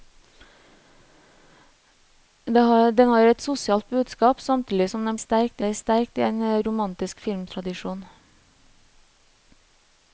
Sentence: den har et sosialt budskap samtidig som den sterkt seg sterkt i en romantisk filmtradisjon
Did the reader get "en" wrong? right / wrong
right